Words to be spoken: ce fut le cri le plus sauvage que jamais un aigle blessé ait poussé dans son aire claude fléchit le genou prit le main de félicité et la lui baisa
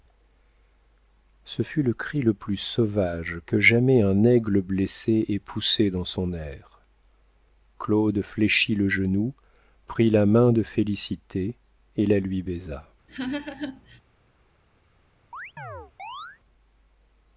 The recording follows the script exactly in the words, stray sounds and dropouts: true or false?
false